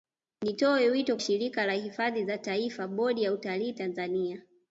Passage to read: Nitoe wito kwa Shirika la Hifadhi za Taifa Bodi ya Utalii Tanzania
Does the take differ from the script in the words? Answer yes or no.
yes